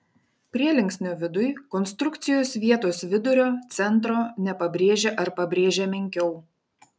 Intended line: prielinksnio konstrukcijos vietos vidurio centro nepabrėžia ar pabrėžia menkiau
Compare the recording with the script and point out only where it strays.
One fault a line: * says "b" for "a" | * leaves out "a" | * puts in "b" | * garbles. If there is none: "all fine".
* puts in "viduj"